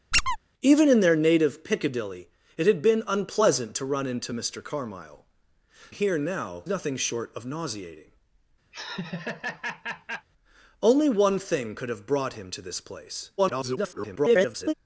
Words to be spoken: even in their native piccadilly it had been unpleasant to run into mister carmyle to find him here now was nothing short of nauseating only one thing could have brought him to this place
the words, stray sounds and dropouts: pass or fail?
fail